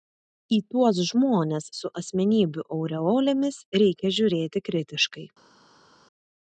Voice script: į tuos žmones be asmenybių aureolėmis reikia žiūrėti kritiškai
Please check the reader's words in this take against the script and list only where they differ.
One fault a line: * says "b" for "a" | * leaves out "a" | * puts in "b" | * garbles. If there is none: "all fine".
* says "su" for "be"